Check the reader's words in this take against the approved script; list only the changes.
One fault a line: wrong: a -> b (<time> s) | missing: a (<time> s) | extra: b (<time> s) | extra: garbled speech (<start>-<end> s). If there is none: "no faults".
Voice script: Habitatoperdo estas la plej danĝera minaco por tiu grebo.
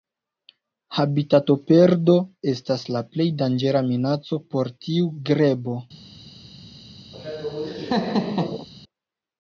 no faults